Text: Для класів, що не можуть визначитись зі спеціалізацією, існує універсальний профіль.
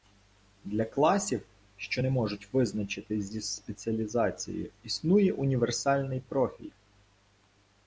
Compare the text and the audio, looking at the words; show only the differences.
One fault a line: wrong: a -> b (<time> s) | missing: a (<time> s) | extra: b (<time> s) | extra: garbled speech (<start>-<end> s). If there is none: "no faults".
no faults